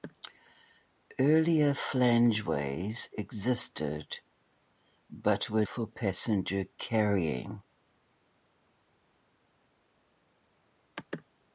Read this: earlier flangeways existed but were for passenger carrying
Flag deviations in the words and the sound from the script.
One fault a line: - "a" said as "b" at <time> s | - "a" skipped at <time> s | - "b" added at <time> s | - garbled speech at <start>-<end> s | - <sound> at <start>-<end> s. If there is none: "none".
none